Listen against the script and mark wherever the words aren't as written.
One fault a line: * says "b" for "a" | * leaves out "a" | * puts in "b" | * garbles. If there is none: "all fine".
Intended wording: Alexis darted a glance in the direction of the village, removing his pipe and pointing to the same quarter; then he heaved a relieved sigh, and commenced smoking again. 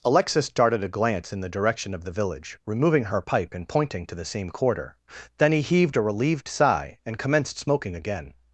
* says "her" for "his"